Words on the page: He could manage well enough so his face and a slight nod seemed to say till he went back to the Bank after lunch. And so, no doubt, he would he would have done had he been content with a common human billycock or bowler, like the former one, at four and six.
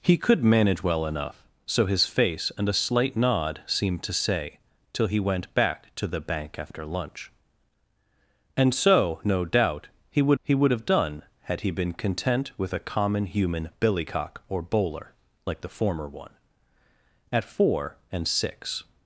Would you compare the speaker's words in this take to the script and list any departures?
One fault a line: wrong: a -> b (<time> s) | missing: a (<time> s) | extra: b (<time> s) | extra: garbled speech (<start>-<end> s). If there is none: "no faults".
no faults